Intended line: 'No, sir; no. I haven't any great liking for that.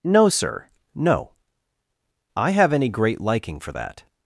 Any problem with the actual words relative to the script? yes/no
yes